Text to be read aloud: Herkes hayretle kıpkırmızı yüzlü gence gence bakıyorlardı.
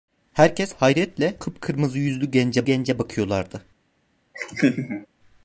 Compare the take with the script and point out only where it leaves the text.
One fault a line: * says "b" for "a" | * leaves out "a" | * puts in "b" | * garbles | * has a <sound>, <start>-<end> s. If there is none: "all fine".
* has a laugh, 4.3-5.1 s